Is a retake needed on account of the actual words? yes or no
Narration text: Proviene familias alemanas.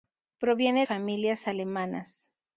no